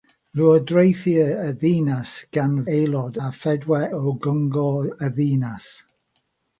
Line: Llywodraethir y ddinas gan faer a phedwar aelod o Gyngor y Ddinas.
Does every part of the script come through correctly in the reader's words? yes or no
no